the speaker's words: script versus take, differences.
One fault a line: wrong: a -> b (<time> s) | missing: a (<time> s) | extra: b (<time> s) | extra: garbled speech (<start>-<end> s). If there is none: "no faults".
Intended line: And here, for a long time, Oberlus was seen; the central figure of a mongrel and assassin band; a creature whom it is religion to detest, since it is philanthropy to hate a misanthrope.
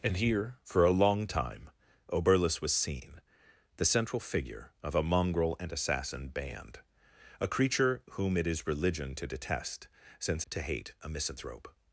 missing: it is philanthropy (10.4 s)